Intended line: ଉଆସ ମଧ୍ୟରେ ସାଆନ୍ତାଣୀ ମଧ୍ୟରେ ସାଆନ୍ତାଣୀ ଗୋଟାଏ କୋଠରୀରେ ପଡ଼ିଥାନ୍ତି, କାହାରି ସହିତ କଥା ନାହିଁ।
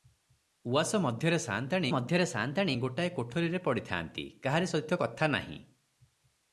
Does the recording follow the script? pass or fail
pass